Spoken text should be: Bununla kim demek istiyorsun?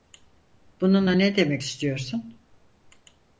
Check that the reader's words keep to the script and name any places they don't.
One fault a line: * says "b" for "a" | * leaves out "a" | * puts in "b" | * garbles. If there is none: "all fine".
* says "ne" for "kim"